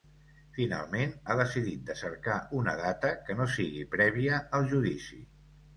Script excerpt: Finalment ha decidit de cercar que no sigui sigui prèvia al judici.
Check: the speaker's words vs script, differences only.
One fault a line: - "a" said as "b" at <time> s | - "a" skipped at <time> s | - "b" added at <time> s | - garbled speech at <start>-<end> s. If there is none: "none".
- "una data" added at 2.6 s
- "sigui" skipped at 3.9 s